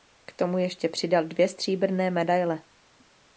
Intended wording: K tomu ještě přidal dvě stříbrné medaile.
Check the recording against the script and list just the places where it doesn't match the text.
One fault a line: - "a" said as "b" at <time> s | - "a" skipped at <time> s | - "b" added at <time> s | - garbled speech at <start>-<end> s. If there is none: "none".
none